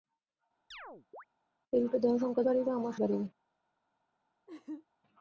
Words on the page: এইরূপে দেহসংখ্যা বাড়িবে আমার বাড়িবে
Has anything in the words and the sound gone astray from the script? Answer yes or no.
yes